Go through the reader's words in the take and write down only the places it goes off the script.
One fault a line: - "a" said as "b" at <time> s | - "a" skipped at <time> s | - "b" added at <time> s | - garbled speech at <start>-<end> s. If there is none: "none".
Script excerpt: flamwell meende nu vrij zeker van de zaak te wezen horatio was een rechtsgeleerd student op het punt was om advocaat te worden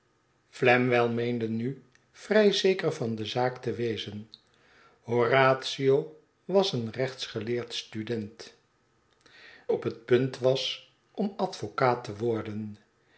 none